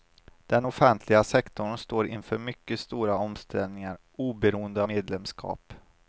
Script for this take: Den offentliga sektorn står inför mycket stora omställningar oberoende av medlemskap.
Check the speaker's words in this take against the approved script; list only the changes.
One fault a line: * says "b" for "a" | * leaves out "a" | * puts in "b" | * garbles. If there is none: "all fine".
* leaves out "av"